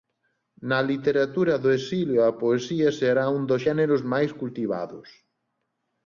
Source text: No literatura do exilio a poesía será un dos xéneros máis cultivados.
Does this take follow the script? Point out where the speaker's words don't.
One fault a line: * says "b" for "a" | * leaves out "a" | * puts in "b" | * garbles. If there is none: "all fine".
* says "Na" for "No"